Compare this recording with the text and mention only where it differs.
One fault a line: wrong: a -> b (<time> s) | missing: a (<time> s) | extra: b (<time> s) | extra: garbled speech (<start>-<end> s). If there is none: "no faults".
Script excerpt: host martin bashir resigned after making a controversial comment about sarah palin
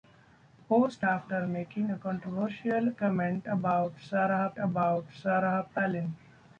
missing: martin bashir resigned (1.1 s)
extra: about sarah (4.6 s)